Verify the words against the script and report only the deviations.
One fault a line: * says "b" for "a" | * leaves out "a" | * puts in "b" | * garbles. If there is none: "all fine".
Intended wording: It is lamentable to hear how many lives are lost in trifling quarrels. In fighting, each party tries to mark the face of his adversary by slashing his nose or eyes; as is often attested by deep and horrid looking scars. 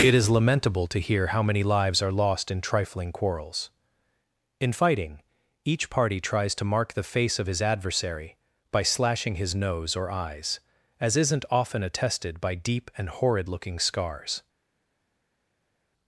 * says "isn't" for "is"